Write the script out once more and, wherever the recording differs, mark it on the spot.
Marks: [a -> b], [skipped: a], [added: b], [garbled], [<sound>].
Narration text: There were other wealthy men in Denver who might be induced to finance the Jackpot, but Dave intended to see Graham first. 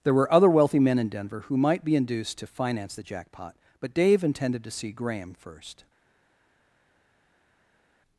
There were other wealthy men in Denver who might be induced to finance the Jackpot, but Dave intended to see Graham first.